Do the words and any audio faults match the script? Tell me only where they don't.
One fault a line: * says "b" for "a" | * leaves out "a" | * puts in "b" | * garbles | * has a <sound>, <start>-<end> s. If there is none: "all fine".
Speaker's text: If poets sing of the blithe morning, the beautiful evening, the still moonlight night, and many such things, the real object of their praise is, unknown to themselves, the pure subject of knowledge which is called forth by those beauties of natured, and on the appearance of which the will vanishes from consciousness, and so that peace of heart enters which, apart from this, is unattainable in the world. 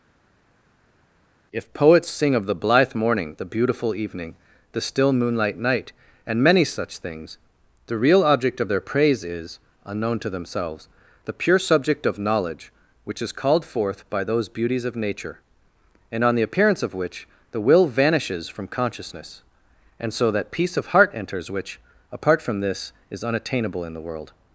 * says "nature" for "natured"